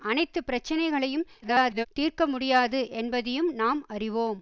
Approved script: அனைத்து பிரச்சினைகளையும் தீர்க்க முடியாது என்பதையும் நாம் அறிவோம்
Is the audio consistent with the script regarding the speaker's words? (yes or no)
no